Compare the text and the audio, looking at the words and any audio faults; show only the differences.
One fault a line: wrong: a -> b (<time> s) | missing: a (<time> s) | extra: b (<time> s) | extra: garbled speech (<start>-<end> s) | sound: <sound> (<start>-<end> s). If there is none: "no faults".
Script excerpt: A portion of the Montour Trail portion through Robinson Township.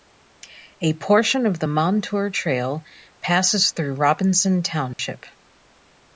wrong: portion -> passes (3.2 s)
sound: dropout (4.9-5.0 s)